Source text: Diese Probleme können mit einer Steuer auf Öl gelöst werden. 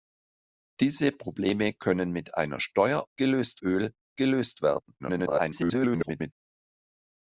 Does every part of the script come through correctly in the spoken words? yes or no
no